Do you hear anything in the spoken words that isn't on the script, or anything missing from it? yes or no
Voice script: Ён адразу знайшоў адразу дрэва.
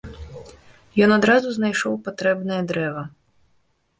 yes